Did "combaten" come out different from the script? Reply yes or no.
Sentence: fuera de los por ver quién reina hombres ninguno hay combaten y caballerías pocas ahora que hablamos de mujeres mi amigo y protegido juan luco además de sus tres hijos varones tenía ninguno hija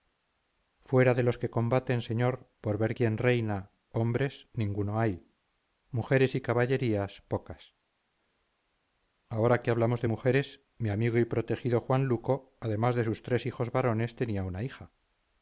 yes